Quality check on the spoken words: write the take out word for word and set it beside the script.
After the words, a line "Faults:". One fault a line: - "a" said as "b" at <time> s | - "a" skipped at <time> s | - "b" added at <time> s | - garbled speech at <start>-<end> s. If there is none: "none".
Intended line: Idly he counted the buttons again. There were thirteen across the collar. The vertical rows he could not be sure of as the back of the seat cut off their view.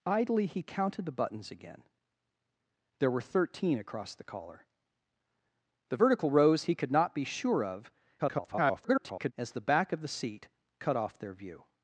Idly he counted the buttons again. There were thirteen across the collar. The vertical rows he could not be sure of [garbled] as the back of the seat cut off their view.
Faults:
- garbled speech at 8.2-9.3 s